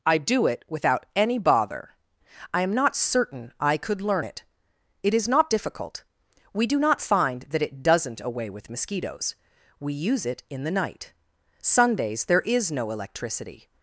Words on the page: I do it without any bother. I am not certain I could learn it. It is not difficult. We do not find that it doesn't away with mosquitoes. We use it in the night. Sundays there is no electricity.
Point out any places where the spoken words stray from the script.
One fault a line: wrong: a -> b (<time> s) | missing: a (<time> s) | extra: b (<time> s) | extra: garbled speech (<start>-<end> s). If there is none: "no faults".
no faults